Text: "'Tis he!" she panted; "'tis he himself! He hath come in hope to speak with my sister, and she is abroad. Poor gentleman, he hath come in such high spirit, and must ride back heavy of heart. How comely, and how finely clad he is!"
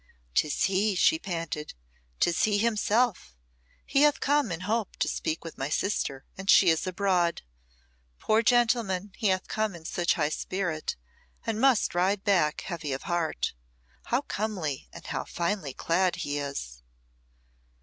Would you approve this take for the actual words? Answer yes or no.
yes